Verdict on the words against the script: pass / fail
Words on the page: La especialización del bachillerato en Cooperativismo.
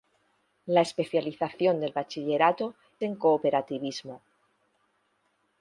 pass